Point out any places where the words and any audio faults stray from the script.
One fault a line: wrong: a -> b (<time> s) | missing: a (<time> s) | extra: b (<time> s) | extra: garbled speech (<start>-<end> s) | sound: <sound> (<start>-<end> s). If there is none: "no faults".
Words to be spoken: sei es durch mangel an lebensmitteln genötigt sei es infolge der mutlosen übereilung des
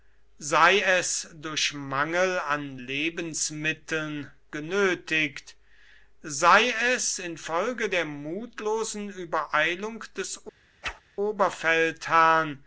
sound: whoosh (10.8-11.0 s)